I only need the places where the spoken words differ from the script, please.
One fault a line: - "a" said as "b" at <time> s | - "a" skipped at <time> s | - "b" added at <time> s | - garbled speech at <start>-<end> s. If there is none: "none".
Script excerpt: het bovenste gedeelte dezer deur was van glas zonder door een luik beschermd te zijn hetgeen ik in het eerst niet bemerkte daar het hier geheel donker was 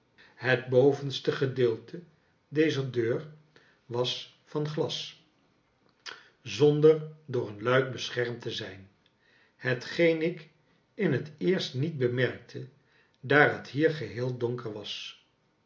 none